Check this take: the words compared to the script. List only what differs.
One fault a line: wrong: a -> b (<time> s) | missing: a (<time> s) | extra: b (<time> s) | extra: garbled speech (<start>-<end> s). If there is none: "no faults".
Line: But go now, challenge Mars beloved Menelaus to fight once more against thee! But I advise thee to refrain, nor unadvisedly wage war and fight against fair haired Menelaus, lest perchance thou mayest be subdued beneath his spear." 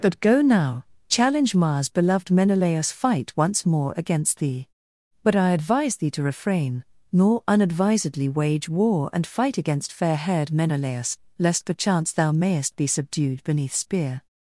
missing: to (2.9 s)
missing: his (13.7 s)